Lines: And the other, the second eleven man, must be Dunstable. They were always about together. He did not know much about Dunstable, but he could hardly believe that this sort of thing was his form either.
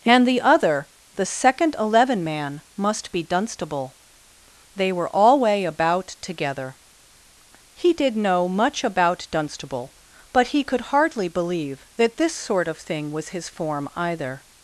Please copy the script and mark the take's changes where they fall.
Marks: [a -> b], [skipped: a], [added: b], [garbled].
And the other, the second eleven man, must be Dunstable. They were [always -> alway] about together. He did [skipped: not] know much about Dunstable, but he could hardly believe that this sort of thing was his form either.